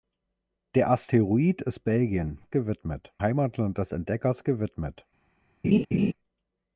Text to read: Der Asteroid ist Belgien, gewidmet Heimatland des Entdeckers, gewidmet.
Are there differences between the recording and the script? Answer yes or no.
no